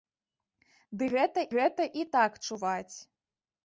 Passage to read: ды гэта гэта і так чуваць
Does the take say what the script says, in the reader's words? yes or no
yes